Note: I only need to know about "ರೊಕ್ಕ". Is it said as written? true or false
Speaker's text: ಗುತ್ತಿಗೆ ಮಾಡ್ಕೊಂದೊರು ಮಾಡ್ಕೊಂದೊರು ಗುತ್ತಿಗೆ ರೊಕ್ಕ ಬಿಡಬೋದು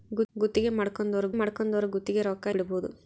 true